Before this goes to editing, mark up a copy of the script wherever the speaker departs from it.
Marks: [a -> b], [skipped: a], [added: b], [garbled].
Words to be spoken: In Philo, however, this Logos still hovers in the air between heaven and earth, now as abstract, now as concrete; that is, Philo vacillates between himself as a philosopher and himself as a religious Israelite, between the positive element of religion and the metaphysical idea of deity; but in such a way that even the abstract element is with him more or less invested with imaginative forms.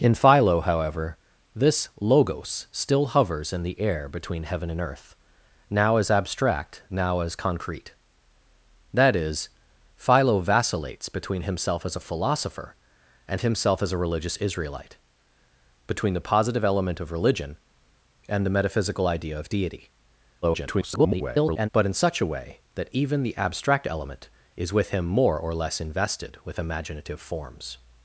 In Philo, however, this Logos still hovers in the air between heaven and earth, now as abstract, now as concrete; that is, Philo vacillates between himself as a philosopher and himself as a religious Israelite, between the positive element of religion and the metaphysical idea of deity; [garbled] but in such a way that even the abstract element is with him more or less invested with imaginative forms.